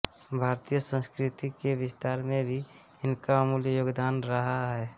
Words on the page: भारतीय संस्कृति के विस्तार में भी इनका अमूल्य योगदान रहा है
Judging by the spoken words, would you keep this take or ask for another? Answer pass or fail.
pass